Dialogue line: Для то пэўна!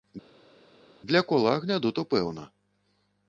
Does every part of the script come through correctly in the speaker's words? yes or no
no